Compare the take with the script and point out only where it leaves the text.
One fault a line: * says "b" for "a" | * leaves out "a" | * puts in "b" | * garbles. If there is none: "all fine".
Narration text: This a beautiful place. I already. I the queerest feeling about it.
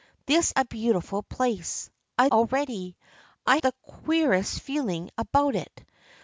all fine